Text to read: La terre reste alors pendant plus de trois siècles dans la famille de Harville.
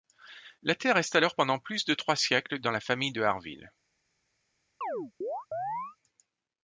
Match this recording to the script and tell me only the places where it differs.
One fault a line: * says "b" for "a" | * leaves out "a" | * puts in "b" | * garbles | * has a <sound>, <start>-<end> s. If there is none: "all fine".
* has a chirp, 4.8-6.0 s